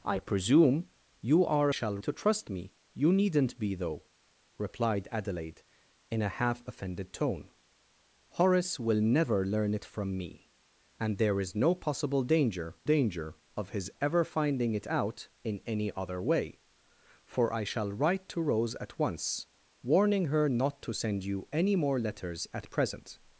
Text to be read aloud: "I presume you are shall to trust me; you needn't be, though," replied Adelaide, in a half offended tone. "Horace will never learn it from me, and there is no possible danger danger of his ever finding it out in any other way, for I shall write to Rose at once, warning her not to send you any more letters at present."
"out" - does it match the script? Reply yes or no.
yes